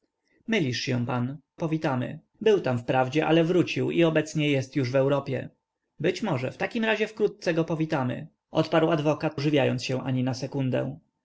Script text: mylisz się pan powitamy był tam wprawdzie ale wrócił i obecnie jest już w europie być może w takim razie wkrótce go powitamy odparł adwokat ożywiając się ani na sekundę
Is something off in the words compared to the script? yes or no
no